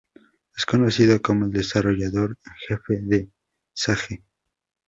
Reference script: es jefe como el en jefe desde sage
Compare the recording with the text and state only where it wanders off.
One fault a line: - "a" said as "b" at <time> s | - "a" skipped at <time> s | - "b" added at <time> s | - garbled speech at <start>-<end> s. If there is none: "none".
- "jefe" said as "conocido" at 0.7 s
- "desarrollador" added at 1.5 s
- "desde" said as "de" at 3.0 s